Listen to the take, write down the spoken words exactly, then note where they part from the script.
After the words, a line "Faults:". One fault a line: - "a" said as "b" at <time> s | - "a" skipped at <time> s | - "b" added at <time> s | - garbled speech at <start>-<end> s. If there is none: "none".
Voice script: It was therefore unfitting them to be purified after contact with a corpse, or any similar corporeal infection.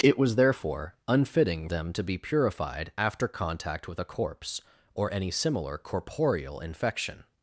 It was therefore unfitting them to be purified after contact with a corpse, or any similar corporeal infection.
Faults:
none